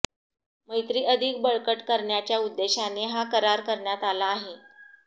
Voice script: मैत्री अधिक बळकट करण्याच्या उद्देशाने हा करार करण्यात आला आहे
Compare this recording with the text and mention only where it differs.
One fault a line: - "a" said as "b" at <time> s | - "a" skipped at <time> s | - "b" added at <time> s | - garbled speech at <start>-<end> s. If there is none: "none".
none